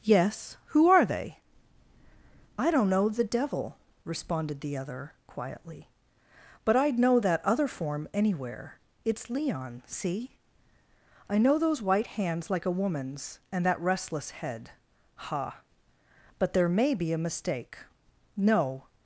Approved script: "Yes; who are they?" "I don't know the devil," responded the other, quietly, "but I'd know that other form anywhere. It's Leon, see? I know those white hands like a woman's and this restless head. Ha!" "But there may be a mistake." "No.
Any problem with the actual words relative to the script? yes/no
yes